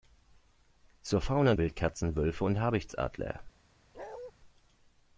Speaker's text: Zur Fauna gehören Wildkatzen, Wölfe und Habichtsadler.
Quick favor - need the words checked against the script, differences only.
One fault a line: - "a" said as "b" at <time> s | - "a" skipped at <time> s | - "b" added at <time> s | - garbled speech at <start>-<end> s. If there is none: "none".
- "gehören" skipped at 1.5 s